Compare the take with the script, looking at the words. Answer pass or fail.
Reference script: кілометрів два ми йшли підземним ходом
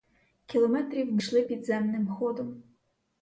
fail